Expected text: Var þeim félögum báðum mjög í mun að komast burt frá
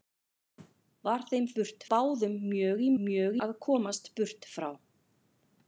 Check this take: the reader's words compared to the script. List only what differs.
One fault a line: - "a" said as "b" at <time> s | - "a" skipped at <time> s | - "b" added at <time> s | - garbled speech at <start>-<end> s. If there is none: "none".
- "félögum" said as "burt" at 1.6 s
- "mun" said as "mjög" at 3.0 s